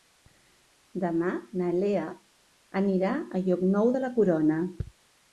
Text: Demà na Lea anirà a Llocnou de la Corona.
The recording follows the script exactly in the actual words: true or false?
true